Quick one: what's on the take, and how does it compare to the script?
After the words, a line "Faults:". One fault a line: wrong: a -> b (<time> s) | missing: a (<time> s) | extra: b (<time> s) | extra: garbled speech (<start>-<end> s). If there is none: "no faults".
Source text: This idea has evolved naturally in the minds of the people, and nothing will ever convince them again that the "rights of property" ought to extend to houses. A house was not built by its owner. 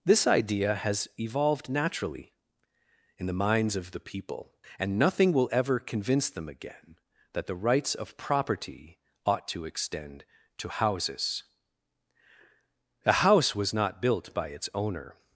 This idea has evolved naturally in the minds of the people, and nothing will ever convince them again that the "rights of property" ought to extend to houses. A house was not built by its owner.
Faults:
no faults